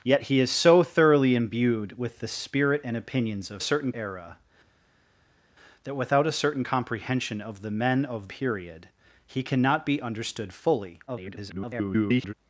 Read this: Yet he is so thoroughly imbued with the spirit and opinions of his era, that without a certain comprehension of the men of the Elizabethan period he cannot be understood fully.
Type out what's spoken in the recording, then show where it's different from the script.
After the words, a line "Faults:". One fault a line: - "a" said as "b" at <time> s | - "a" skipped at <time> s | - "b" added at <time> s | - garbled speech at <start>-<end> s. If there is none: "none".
Yet he is so thoroughly imbued with the spirit and opinions of certain era, that without a certain comprehension of the men of period he cannot be understood fully. [garbled]
Faults:
- "his" said as "certain" at 3.6 s
- "the Elizabethan" skipped at 8.3 s
- garbled speech at 11.1-12.3 s